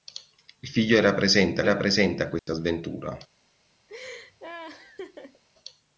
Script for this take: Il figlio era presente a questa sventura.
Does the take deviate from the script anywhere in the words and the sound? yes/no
yes